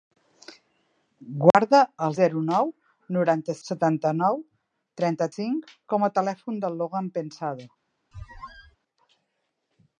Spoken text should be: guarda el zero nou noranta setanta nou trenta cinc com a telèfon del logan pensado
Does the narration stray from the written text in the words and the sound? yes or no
yes